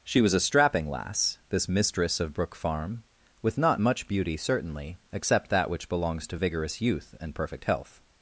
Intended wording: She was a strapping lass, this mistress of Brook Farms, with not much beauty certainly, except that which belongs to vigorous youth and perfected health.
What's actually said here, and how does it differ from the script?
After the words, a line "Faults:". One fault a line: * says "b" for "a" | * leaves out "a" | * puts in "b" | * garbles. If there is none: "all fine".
She was a strapping lass, this mistress of Brook Farm, with not much beauty certainly, except that which belongs to vigorous youth and perfect health.
Faults:
* says "Farm" for "Farms"
* says "perfect" for "perfected"